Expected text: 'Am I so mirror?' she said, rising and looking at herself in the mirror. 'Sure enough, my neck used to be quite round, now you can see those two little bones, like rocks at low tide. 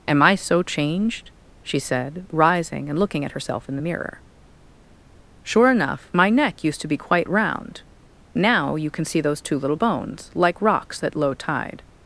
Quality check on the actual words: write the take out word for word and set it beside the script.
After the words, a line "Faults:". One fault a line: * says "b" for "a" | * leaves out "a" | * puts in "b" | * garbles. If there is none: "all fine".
'Am I so changed?' she said, rising and looking at herself in the mirror. 'Sure enough, my neck used to be quite round, now you can see those two little bones, like rocks at low tide.
Faults:
* says "changed" for "mirror"